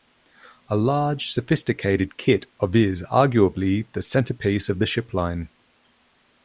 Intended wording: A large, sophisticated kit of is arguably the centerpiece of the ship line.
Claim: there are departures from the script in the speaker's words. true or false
false